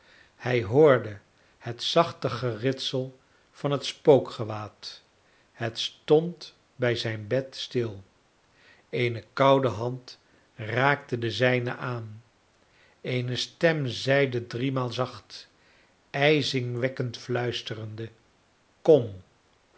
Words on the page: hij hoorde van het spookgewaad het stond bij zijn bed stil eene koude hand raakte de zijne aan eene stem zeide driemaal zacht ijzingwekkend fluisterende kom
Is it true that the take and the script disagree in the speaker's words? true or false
true